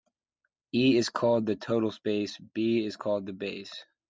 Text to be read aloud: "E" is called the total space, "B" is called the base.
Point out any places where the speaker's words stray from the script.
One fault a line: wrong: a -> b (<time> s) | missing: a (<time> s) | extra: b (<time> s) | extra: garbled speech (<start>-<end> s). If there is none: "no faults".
no faults